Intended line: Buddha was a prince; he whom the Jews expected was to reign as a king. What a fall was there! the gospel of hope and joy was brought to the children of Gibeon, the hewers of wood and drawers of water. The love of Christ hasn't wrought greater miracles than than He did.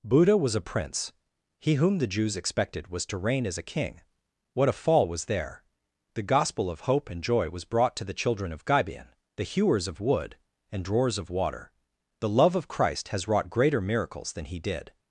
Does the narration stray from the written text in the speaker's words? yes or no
yes